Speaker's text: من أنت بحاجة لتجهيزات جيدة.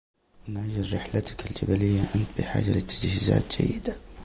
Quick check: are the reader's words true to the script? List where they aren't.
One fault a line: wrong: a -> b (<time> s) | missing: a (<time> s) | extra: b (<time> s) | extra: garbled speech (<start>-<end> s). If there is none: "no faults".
extra: أجل رحلتك الجبلية (0.6 s)